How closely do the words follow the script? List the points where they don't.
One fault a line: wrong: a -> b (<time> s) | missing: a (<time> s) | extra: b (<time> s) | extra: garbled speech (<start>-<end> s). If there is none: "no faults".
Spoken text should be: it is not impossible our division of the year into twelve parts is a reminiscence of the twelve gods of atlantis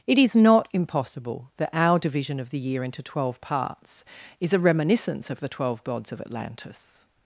extra: that (1.6 s)